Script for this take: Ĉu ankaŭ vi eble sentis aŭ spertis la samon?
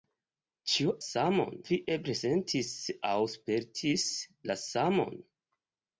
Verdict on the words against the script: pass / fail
fail